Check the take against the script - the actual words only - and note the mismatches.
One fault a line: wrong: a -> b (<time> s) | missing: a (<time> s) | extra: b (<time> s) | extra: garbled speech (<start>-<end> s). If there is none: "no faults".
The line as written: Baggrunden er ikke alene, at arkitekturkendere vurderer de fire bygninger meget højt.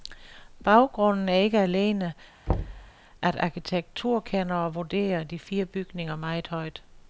no faults